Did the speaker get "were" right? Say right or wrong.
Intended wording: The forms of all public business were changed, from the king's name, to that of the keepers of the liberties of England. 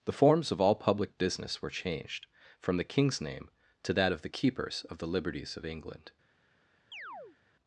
right